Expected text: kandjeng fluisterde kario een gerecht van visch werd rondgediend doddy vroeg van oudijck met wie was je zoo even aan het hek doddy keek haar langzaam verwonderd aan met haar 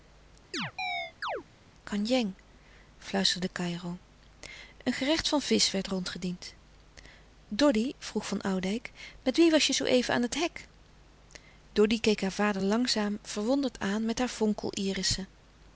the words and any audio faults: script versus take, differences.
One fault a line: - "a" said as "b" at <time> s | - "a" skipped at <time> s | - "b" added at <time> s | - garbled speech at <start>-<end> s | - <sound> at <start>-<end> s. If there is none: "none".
- chirp at 0.5-1.4 s
- "vader" added at 12.3 s